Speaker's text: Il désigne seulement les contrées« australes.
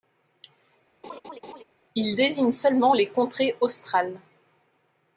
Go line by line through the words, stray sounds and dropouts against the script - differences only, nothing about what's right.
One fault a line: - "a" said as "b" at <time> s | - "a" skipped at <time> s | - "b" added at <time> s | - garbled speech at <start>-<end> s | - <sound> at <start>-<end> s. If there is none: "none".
- laugh at 1.0-1.6 s